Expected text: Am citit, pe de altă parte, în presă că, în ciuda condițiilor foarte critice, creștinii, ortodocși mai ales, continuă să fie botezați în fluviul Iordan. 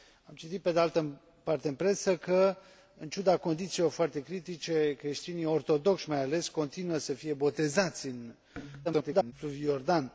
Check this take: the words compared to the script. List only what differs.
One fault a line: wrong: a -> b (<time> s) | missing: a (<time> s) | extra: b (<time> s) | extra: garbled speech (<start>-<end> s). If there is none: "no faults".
extra: garbled speech (8.8-9.3 s)